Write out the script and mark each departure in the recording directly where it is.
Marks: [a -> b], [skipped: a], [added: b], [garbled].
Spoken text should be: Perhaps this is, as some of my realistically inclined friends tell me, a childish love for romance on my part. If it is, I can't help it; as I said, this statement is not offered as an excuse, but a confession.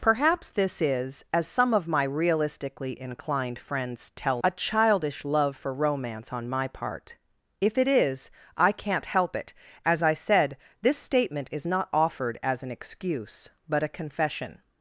Perhaps this is, as some of my realistically inclined friends tell [skipped: me,] a childish love for romance on my part. If it is, I can't help it; as I said, this statement is not offered as an excuse, but a confession.